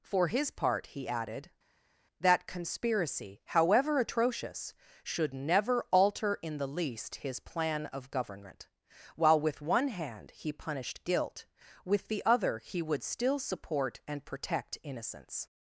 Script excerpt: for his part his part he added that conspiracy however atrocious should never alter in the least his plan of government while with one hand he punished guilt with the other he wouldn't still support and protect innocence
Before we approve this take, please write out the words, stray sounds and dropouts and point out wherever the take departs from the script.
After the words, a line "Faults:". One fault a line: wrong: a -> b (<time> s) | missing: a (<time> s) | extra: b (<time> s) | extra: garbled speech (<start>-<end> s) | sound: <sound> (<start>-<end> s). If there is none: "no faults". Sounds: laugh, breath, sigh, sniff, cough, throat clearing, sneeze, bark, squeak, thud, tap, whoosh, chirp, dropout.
for his part he added that conspiracy however atrocious should never alter in the least his plan of government while with one hand he punished guilt with the other he would still support and protect innocence
Faults:
missing: his part (0.9 s)
wrong: wouldn't -> would (12.8 s)